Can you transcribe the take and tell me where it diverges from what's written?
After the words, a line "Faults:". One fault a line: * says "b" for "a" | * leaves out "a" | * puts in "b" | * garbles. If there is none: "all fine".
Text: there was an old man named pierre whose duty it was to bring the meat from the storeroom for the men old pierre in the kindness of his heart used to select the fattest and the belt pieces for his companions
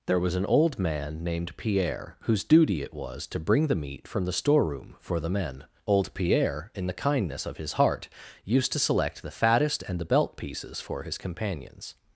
there was an old man named pierre whose duty it was to bring the meat from the storeroom for the men old pierre in the kindness of his heart used to select the fattest and the belt pieces for his companions
Faults:
all fine